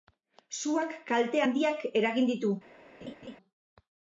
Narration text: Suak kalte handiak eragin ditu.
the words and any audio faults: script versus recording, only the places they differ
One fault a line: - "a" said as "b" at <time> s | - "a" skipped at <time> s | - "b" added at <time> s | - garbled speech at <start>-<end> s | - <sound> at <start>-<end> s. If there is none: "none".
- laugh at 3.0-3.4 s